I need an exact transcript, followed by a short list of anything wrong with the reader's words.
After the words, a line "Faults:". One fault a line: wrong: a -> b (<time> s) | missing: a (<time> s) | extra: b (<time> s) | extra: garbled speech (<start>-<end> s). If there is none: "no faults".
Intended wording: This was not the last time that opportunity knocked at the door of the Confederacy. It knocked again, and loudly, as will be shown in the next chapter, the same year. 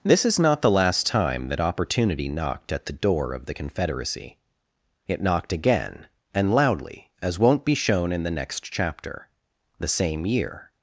This is not the last time that opportunity knocked at the door of the Confederacy. It knocked again, and loudly, as won't be shown in the next chapter, the same year.
Faults:
wrong: was -> is (0.2 s)
wrong: will -> won't (7.4 s)